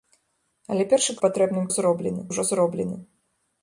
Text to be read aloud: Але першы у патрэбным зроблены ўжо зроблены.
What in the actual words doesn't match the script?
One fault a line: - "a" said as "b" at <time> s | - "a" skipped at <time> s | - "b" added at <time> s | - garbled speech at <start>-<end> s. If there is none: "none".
none